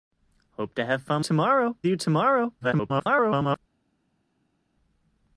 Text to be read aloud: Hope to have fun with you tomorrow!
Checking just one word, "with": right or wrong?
wrong